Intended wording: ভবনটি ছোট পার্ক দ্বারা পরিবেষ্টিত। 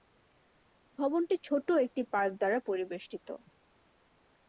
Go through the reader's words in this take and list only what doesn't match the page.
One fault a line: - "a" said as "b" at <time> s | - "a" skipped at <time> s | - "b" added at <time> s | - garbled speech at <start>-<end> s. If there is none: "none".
- "একটি" added at 1.9 s